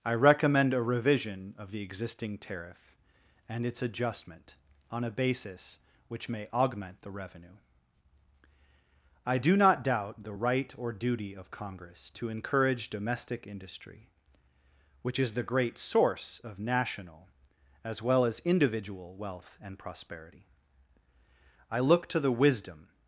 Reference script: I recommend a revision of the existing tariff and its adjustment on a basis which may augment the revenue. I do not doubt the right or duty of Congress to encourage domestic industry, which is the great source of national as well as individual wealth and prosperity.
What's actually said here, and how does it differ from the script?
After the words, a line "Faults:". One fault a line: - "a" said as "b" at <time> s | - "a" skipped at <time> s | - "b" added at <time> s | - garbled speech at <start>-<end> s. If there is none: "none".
I recommend a revision of the existing tariff and its adjustment on a basis which may augment the revenue. I do not doubt the right or duty of Congress to encourage domestic industry, which is the great source of national as well as individual wealth and prosperity. I look to the wisdom
Faults:
- "I look to the wisdom" added at 21.7 s